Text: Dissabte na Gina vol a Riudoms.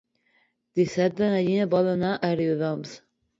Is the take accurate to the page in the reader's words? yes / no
no